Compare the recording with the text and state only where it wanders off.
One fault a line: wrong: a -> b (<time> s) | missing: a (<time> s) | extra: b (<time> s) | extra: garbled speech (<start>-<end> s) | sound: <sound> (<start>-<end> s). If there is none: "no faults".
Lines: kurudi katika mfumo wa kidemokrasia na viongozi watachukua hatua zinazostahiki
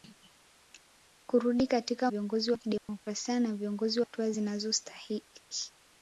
wrong: mfumo -> viongozi (2.1 s)
sound: dropout (2.8-2.9 s)
missing: watachukua (4.0 s)